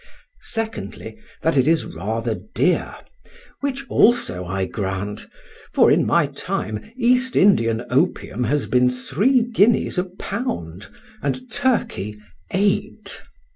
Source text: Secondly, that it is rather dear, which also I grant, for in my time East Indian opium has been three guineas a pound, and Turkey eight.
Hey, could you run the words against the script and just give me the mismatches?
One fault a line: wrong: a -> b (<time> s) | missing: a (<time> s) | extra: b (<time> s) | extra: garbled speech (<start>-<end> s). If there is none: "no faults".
no faults